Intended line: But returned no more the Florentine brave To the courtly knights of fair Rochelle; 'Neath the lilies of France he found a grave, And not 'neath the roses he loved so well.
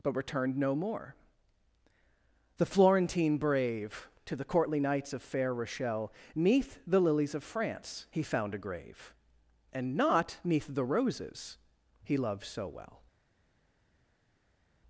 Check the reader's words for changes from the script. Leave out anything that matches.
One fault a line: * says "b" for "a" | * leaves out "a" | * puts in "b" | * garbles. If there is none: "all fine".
all fine